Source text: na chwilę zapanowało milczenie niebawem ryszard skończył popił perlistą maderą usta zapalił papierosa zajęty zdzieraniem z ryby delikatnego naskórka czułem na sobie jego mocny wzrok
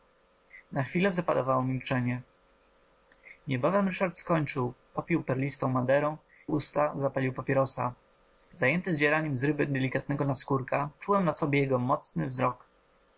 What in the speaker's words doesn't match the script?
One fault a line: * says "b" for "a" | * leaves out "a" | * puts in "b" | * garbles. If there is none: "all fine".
all fine